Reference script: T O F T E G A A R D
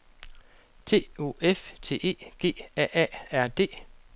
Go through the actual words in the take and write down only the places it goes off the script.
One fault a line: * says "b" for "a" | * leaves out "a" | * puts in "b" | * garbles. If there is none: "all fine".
all fine